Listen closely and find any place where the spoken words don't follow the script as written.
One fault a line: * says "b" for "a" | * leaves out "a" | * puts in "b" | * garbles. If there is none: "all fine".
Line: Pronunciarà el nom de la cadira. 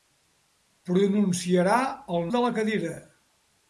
* leaves out "nom"